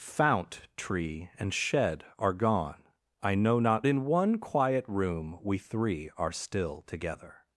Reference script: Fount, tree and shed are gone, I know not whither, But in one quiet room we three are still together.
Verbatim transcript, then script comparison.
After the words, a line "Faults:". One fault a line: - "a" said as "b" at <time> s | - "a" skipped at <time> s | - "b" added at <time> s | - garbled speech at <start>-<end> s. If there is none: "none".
Fount, tree and shed are gone, I know not in one quiet room we three are still together.
Faults:
- "whither But" skipped at 3.9 s